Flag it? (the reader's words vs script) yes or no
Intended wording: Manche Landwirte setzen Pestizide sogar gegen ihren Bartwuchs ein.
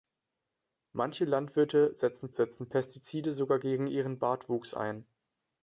yes